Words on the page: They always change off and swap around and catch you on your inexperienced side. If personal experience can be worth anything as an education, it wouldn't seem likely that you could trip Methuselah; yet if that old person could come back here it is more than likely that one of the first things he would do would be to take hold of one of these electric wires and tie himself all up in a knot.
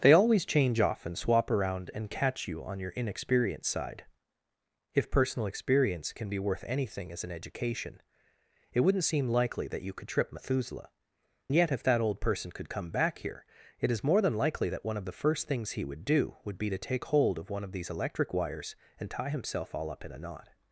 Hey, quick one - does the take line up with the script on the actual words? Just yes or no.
yes